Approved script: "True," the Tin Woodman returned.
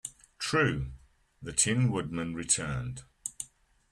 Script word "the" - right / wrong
right